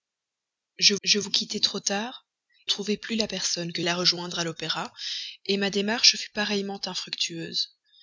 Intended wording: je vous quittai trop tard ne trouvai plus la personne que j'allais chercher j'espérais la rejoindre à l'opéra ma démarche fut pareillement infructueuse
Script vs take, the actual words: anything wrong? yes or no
yes